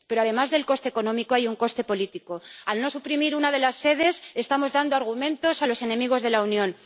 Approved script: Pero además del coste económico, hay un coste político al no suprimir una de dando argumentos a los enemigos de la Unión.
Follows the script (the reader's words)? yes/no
no